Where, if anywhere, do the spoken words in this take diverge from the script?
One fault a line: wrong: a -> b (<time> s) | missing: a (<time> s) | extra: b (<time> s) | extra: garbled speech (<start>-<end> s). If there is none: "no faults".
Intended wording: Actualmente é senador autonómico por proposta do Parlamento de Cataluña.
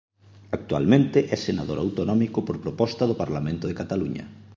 no faults